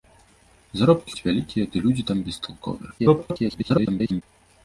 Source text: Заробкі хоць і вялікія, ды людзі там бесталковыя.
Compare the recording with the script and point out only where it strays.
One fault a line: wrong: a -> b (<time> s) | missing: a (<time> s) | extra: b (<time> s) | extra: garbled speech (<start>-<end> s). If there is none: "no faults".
missing: хоць (1.1 s)
extra: garbled speech (3.0-4.2 s)